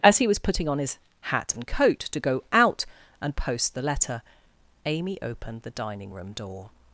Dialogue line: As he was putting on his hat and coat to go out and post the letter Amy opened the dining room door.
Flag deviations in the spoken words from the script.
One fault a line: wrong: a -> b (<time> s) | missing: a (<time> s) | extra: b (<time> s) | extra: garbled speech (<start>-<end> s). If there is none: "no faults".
no faults